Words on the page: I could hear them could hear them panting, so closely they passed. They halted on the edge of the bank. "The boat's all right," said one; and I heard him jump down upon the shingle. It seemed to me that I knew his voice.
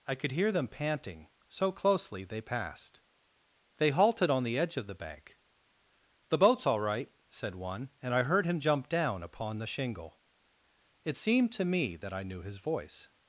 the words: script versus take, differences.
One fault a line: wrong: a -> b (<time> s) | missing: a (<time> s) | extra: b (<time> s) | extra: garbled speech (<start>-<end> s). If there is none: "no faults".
missing: could hear them (0.7 s)